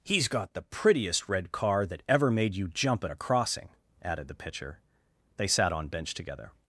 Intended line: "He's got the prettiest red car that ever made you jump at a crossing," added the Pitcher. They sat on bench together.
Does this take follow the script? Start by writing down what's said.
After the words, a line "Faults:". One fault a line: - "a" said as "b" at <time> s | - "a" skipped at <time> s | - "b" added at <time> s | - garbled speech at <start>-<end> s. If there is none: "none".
"He's got the prettiest red car that ever made you jump at a crossing," added the Pitcher. They sat on bench together.
Faults:
none